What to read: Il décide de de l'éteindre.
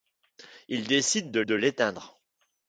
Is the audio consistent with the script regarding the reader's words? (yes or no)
yes